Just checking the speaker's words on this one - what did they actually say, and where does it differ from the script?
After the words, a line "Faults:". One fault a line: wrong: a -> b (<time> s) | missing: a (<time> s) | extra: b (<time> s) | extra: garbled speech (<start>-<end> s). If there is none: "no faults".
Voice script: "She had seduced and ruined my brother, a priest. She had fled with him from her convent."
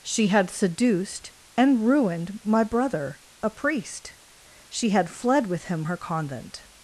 "She had seduced and ruined my brother, a priest. She had fled with him her convent."
Faults:
missing: from (5.8 s)